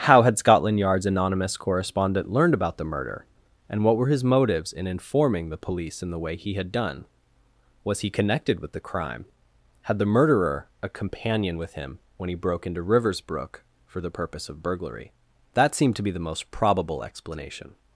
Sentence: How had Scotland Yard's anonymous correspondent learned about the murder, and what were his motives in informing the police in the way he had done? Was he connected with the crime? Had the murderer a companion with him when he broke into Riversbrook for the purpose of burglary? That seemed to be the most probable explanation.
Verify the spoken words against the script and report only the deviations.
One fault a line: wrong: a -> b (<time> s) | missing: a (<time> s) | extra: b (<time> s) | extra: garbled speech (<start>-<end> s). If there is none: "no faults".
no faults